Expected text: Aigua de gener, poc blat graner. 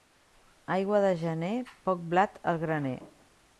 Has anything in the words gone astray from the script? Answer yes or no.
yes